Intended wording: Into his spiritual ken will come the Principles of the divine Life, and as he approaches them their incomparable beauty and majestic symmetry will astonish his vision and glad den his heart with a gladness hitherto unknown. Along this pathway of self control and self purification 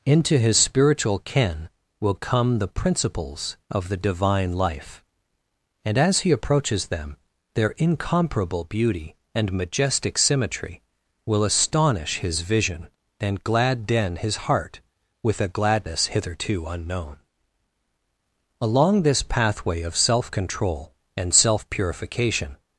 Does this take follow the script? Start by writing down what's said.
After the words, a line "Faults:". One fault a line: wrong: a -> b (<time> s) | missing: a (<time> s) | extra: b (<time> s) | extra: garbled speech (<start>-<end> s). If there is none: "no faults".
Into his spiritual ken will come the Principles of the divine Life, and as he approaches them their incomparable beauty and majestic symmetry will astonish his vision and glad den his heart with a gladness hitherto unknown. Along this pathway of self control and self purification
Faults:
no faults